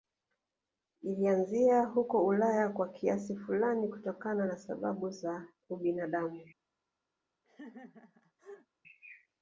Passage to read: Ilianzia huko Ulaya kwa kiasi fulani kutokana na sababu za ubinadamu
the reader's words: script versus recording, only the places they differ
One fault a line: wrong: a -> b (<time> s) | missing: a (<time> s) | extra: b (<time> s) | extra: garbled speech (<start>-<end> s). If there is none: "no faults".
no faults